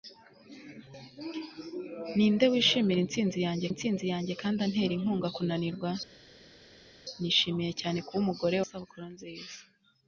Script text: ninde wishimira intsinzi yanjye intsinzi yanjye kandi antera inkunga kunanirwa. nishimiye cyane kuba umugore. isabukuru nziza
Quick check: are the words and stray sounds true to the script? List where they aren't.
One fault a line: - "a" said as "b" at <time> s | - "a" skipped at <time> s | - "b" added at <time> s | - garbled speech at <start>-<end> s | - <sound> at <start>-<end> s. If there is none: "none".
none